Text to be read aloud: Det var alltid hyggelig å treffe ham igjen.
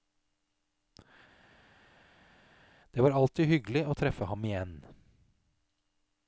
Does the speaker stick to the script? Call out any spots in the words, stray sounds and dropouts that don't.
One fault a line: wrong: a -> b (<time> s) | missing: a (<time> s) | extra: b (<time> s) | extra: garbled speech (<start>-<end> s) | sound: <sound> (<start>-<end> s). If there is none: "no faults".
no faults